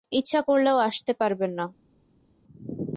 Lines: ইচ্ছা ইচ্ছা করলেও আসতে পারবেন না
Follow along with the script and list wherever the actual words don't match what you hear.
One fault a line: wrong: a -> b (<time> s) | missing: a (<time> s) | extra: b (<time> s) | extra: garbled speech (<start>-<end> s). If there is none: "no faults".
missing: ইচ্ছা (0.4 s)